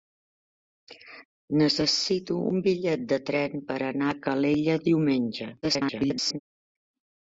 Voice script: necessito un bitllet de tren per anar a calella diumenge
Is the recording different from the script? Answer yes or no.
yes